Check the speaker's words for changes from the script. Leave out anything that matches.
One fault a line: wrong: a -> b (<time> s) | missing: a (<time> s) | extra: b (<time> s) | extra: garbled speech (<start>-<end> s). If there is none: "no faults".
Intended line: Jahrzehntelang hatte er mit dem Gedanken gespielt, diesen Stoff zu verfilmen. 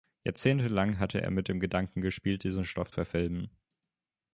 missing: zu (2.9 s)